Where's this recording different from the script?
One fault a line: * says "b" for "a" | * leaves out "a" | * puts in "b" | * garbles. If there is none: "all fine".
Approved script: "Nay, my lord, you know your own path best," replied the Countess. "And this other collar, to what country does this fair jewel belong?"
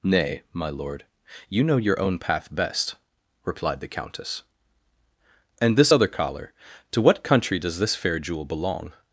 all fine